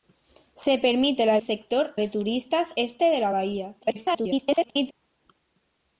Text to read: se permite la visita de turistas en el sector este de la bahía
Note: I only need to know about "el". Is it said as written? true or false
false